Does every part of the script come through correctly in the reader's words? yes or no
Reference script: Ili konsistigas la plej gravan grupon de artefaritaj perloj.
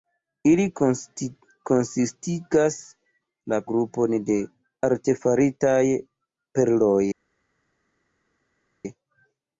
no